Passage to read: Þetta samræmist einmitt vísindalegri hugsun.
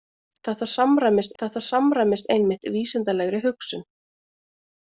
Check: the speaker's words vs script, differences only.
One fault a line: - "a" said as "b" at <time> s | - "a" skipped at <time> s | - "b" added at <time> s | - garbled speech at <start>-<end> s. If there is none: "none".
- "þetta samræmist" added at 1.4 s